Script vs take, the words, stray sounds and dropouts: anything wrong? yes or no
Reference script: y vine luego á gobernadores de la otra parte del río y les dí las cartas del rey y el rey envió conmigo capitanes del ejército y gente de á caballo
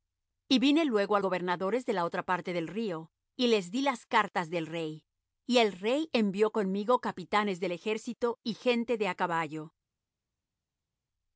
no